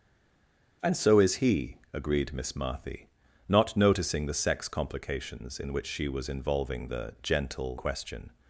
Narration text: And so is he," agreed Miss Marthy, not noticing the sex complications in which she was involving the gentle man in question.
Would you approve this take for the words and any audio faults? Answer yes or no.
no